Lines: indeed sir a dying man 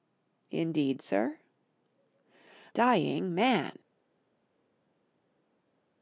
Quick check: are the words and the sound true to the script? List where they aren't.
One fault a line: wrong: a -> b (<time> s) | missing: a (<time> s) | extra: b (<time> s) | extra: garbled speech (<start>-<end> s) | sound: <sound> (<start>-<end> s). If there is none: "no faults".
missing: a (1.4 s)